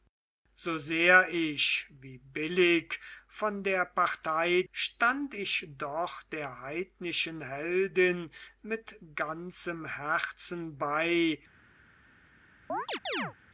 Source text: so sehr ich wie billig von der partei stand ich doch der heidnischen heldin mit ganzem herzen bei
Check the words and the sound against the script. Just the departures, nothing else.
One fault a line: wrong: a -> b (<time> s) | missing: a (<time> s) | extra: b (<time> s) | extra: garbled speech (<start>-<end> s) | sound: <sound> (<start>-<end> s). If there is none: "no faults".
sound: chirp (12.7-13.3 s)